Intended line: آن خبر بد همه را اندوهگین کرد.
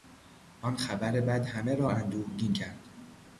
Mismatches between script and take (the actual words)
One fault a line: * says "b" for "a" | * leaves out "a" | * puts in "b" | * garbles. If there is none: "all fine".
all fine